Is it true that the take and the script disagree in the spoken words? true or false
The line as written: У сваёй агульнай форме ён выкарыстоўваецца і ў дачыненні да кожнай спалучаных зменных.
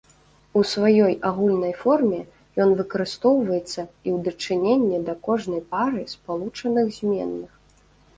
true